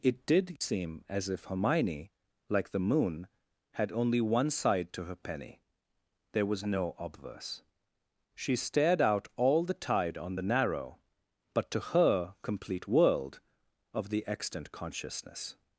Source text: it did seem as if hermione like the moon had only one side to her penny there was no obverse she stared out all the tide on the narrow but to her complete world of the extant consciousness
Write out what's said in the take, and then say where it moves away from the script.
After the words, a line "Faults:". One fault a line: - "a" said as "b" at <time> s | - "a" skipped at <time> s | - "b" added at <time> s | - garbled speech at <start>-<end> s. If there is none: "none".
it did seem as if hermione like the moon had only one side to her penny there was no obverse she stared out all the tide on the narrow but to her complete world of the extant consciousness
Faults:
none